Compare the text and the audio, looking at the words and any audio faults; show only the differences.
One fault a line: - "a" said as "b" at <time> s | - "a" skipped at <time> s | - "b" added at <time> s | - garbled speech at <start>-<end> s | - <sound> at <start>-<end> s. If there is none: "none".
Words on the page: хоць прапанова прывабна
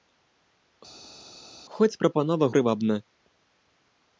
none